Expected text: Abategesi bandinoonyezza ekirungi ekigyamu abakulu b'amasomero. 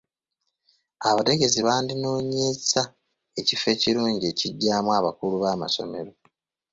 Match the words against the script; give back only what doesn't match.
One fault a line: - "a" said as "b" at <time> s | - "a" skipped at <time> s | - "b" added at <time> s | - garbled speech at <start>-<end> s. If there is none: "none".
- "ekifo" added at 3.4 s